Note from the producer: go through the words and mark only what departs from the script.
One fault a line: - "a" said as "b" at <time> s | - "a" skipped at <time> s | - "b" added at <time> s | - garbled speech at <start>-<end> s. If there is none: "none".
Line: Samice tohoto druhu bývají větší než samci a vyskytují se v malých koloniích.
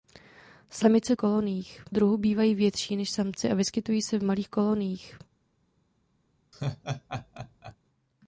- "tohoto" said as "koloniích" at 1.1 s